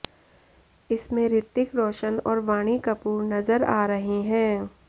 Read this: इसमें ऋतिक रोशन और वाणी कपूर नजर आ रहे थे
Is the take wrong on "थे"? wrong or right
wrong